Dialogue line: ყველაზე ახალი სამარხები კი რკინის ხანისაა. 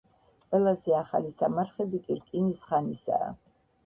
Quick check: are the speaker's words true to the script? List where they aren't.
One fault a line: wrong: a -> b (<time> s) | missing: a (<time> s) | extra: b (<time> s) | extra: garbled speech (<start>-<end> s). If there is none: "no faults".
no faults